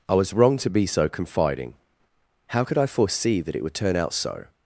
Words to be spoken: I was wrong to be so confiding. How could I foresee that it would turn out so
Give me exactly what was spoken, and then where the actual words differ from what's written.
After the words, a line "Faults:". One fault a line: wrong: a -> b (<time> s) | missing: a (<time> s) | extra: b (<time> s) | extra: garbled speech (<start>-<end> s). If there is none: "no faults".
I was wrong to be so confiding. How could I foresee that it would turn out so
Faults:
no faults